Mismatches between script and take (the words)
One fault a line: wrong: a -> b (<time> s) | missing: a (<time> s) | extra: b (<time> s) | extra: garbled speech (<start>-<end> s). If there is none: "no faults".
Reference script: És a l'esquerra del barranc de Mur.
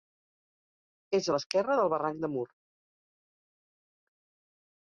no faults